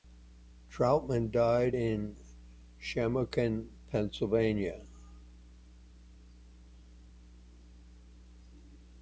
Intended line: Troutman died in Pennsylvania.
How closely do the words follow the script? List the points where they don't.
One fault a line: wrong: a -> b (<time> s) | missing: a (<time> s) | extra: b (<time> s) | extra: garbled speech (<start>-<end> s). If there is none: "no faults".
extra: Shamokin (2.8 s)